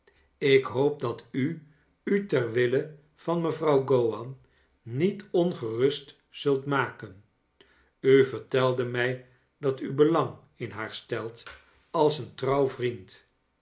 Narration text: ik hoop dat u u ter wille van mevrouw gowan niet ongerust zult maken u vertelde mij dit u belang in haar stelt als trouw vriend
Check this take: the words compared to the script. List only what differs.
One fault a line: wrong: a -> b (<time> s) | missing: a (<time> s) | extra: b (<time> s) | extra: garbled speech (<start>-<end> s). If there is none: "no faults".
wrong: dit -> dat (9.6 s)
extra: een (12.2 s)